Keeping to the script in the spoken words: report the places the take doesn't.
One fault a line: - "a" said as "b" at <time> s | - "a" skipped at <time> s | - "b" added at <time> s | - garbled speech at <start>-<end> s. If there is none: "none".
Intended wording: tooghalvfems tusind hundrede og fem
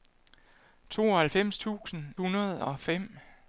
none